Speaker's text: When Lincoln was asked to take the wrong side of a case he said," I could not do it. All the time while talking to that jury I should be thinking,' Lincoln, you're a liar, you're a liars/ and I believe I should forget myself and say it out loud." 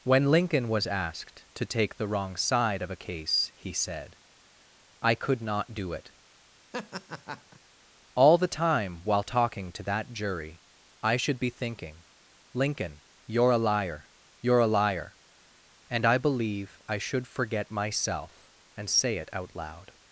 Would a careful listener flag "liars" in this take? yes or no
yes